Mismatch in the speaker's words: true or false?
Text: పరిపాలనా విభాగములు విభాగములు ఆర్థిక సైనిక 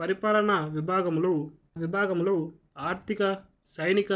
false